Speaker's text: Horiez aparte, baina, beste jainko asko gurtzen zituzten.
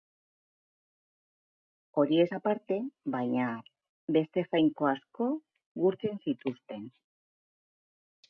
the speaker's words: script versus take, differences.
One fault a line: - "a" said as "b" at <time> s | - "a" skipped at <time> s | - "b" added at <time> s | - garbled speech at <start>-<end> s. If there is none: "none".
none